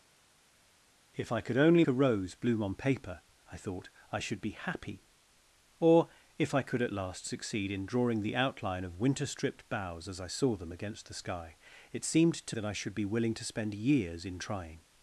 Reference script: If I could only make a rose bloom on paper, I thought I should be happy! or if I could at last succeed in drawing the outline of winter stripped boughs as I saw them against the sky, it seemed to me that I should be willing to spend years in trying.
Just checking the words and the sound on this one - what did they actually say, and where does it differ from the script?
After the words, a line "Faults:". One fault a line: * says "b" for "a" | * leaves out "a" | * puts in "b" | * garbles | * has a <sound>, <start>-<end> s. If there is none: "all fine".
If I could only a rose bloom on paper, I thought I should be happy! or if I could at last succeed in drawing the outline of winter stripped boughs as I saw them against the sky, it seemed to that I should be willing to spend years in trying.
Faults:
* leaves out "make"
* leaves out "me"